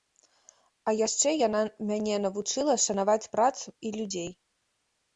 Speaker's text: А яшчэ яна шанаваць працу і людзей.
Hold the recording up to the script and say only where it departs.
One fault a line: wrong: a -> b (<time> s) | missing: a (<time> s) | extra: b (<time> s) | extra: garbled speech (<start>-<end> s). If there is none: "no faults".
extra: мяне навучыла (1.9 s)